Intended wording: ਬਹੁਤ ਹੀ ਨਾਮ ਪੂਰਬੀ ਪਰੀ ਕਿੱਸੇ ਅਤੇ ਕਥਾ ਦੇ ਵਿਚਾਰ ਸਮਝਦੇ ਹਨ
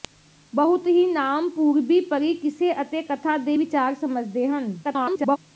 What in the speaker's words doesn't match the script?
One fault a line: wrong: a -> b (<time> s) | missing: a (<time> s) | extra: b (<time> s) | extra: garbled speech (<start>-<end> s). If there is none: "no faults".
extra: garbled speech (4.8-5.4 s)